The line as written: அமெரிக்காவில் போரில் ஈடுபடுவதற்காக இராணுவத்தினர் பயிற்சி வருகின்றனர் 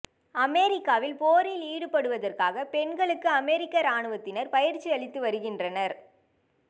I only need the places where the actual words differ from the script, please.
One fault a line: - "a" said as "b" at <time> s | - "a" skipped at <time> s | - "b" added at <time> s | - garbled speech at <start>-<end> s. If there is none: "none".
- "பெண்களுக்கு அமெரிக்க" added at 2.7 s
- "அளித்து" added at 4.9 s